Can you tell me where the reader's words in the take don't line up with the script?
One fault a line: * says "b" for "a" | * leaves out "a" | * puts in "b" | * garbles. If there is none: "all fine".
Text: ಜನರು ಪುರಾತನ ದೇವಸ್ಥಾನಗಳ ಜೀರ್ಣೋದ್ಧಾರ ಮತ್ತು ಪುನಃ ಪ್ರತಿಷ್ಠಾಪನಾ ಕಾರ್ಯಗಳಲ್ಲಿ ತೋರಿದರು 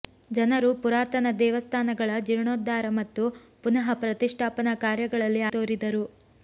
all fine